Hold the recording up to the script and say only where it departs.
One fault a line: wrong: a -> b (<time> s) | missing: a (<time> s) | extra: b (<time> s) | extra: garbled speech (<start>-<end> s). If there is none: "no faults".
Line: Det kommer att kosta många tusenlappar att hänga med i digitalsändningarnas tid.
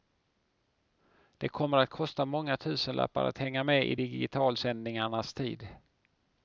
no faults